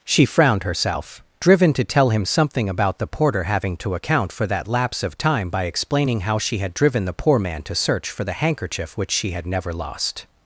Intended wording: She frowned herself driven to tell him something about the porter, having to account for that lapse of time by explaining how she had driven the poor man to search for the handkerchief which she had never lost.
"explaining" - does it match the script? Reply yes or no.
yes